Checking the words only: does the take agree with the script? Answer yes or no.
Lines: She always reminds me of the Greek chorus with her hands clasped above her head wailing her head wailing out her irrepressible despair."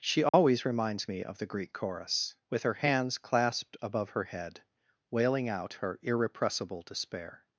no